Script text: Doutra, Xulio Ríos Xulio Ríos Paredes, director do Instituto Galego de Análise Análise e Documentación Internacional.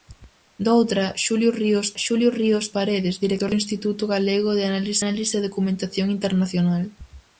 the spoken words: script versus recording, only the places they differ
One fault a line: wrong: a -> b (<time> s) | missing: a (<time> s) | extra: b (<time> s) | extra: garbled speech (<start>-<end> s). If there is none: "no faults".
no faults